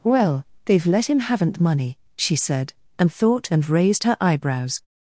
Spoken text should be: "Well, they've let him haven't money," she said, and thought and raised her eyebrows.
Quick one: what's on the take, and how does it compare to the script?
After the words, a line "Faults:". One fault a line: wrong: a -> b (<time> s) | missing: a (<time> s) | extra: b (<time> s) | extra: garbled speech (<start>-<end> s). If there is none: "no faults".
"Well, they've let him haven't money," she said, and thought and raised her eyebrows.
Faults:
no faults